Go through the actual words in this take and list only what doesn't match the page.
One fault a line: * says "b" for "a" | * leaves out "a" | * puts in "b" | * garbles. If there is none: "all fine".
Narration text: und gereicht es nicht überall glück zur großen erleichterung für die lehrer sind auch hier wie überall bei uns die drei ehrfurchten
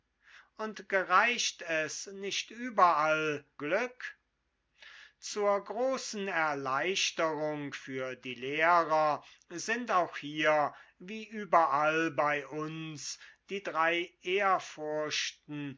all fine